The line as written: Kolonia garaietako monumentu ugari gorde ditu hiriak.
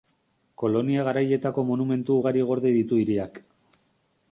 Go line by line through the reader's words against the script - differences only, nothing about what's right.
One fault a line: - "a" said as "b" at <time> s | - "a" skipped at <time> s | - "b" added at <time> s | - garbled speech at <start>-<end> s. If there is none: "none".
none